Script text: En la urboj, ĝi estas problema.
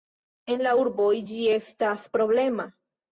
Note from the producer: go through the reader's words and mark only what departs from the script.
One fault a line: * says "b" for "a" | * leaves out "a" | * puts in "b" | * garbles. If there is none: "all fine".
all fine